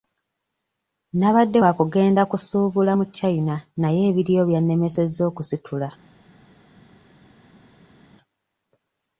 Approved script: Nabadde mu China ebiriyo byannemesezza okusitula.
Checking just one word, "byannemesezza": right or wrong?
right